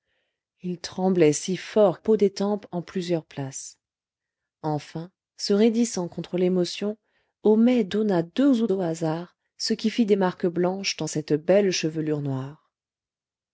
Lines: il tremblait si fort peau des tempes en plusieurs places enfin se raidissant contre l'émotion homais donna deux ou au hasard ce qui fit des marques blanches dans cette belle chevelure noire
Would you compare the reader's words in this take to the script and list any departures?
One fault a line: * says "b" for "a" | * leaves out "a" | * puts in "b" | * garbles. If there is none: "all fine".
all fine